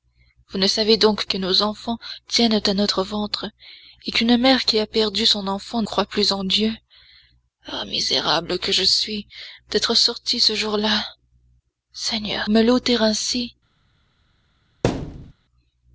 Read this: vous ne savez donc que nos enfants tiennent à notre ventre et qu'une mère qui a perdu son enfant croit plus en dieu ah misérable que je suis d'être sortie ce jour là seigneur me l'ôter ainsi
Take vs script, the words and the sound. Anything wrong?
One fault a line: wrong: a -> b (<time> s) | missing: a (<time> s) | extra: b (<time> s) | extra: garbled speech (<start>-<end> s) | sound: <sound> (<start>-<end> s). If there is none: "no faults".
sound: thud (14.8-15.3 s)